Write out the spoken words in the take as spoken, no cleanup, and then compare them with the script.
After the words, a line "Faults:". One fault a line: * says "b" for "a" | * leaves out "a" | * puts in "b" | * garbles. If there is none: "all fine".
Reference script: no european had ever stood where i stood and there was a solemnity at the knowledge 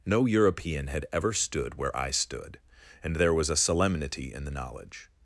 no european had ever stood where i stood and there was a solemnity in the knowledge
Faults:
* says "in" for "at"